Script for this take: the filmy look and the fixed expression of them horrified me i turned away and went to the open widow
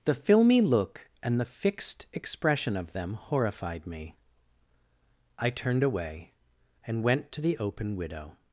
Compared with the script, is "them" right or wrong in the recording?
right